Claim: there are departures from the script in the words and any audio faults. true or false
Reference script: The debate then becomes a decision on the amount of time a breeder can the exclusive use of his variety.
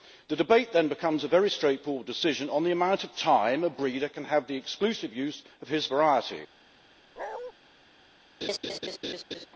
true